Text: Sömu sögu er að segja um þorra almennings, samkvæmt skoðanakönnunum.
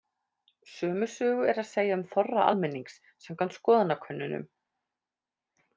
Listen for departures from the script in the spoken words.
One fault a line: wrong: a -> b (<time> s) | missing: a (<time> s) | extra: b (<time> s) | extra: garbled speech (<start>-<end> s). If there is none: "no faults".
no faults